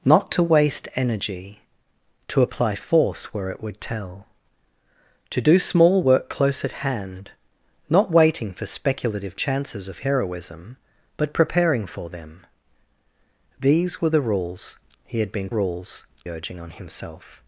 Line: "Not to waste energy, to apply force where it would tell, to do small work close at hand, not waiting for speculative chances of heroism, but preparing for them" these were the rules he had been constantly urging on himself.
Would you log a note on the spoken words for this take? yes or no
yes